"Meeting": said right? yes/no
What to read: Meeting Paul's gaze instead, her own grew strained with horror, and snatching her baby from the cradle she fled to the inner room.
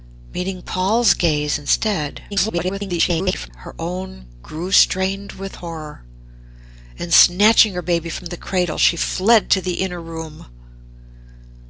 yes